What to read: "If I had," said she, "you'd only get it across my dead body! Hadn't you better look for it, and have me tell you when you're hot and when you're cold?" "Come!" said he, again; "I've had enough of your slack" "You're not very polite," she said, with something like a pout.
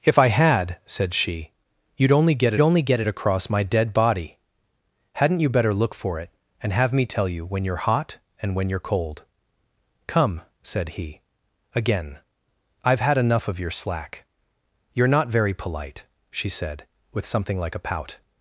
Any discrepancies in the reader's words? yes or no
yes